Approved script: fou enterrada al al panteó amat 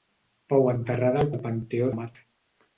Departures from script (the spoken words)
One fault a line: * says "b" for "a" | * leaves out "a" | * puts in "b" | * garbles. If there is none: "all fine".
all fine